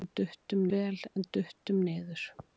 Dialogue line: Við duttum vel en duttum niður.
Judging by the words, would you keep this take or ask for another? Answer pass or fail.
pass